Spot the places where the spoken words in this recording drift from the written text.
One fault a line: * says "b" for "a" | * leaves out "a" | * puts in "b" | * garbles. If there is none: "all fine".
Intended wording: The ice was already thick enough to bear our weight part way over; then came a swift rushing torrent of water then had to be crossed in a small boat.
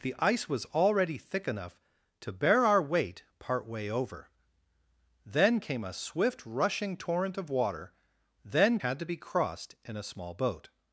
all fine